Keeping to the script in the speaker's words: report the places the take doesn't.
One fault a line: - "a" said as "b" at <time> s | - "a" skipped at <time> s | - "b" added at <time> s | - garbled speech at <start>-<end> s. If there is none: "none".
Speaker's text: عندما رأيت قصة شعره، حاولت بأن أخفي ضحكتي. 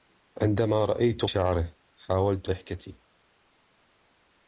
- "قصة" skipped at 1.2 s
- "بأن أخفي" skipped at 2.5 s